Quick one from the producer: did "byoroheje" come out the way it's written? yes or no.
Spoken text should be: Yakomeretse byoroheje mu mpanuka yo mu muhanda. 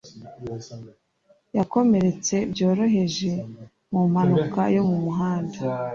yes